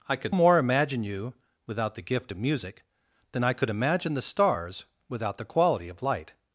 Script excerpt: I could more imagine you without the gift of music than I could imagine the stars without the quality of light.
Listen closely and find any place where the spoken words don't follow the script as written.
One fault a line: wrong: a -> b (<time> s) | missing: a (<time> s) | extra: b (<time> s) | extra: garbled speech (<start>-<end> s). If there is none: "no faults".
no faults